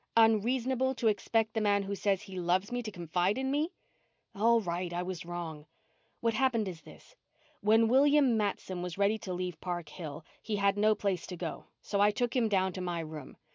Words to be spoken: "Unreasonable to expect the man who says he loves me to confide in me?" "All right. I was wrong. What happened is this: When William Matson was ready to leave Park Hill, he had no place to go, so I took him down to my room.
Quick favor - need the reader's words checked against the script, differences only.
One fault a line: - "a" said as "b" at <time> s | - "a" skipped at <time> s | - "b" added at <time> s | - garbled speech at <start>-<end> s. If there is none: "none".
none